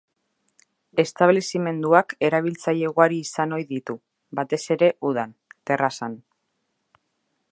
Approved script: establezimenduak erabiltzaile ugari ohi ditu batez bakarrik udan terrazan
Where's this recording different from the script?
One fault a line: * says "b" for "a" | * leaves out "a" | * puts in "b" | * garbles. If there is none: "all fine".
* puts in "izan"
* says "ere" for "bakarrik"